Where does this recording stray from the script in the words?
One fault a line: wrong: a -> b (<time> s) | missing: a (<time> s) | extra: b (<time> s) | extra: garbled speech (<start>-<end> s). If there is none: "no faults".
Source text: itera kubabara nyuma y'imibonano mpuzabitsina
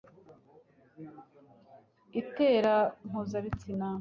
missing: kubabara nyuma y'imibonano (2.8 s)